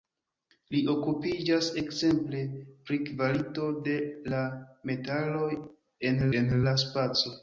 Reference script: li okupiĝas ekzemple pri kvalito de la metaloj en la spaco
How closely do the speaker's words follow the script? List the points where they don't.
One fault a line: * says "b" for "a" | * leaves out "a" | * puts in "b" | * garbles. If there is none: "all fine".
* puts in "en"